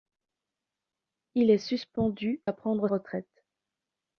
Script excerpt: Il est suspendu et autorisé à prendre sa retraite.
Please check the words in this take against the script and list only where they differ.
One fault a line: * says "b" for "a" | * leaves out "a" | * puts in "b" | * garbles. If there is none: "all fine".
* leaves out "et autorisé"
* leaves out "sa"